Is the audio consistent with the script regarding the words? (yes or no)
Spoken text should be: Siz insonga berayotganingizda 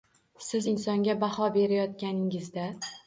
no